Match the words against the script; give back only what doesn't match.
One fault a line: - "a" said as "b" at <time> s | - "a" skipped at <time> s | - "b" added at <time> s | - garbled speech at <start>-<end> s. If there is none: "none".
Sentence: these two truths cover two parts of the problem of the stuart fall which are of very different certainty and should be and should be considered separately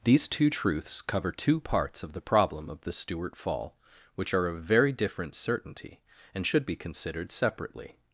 - "and should be" skipped at 6.8 s